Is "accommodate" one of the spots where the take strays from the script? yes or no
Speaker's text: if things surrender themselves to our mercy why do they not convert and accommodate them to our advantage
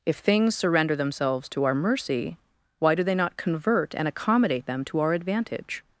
no